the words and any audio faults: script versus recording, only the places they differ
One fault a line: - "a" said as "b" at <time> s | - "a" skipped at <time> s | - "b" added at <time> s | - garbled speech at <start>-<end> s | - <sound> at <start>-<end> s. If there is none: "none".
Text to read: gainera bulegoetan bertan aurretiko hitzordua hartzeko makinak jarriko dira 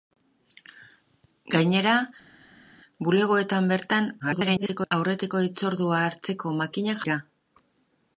- garbled speech at 4.2-4.9 s
- "jarriko" skipped at 7.1 s